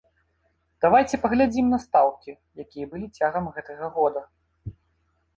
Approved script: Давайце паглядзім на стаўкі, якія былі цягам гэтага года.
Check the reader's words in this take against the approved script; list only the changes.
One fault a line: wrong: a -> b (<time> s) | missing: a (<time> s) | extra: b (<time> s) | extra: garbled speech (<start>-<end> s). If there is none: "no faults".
no faults